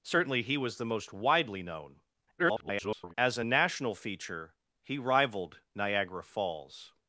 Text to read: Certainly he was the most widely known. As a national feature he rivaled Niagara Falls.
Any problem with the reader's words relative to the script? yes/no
yes